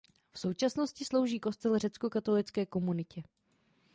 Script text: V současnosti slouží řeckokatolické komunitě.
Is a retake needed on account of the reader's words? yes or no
yes